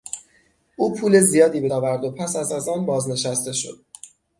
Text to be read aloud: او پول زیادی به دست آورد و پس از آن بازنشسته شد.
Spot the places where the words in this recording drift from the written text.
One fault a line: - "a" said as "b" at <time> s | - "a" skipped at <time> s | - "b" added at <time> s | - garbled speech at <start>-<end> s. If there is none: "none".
- "دست" skipped at 1.7 s
- "از" added at 2.5 s